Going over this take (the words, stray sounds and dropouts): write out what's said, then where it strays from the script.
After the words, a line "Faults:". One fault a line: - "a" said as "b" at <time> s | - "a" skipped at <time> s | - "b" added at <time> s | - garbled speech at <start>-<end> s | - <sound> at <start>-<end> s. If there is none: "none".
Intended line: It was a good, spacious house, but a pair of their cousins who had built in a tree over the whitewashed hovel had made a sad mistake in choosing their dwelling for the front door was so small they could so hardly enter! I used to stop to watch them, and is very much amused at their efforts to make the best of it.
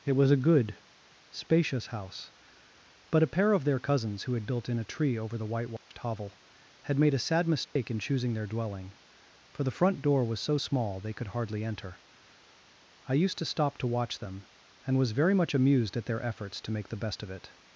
It was a good, spacious house, but a pair of their cousins who had built in a tree over the whitewashed hovel had made a sad mistake in choosing their dwelling for the front door was so small they could hardly enter! I used to stop to watch them, and was very much amused at their efforts to make the best of it.
Faults:
- dropout at 5.8-5.9 s
- dropout at 7.6-7.8 s
- "so" skipped at 11.3 s
- "is" said as "was" at 15.0 s